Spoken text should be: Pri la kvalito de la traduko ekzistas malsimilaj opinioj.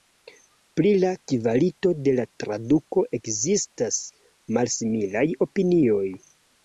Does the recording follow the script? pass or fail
pass